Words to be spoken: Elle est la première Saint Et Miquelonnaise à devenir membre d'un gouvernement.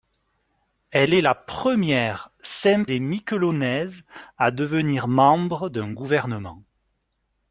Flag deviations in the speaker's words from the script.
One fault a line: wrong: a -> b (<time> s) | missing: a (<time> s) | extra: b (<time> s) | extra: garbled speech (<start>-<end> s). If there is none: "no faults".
no faults